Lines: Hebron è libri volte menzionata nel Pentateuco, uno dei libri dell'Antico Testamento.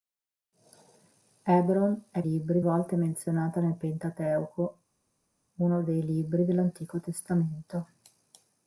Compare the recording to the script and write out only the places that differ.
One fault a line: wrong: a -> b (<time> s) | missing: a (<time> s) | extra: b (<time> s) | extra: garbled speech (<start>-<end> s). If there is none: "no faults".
no faults